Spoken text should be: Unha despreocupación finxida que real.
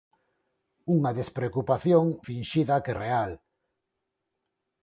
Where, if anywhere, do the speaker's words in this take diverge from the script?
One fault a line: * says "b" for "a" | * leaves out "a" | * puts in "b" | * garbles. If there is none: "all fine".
all fine